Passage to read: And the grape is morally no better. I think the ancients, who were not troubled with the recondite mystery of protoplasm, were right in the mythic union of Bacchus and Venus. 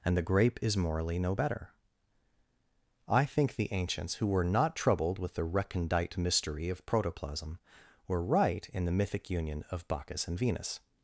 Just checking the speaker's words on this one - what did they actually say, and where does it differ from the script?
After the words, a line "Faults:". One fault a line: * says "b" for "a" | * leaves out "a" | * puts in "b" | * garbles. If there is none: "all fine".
And the grape is morally no better. I think the ancients, who were not troubled with the recondite mystery of protoplasm, were right in the mythic union of Bacchus and Venus.
Faults:
all fine